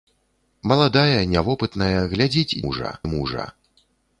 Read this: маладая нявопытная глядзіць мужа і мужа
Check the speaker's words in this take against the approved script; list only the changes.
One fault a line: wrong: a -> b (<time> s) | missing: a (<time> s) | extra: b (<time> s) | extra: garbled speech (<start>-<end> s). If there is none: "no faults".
no faults